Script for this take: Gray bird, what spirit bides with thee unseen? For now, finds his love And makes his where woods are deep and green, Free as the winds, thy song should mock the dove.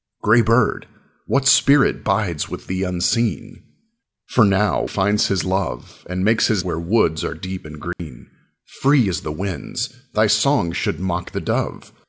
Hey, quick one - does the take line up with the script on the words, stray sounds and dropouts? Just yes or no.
no